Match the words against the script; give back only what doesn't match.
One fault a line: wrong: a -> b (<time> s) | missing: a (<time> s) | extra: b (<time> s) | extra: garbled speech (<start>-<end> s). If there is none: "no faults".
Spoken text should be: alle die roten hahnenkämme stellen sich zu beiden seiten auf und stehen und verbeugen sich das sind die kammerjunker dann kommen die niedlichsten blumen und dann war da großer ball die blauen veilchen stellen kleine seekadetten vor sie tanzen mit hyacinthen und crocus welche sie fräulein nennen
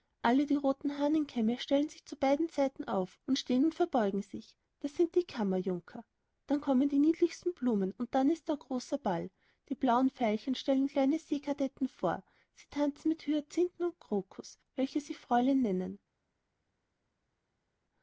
wrong: war -> ist (8.3 s)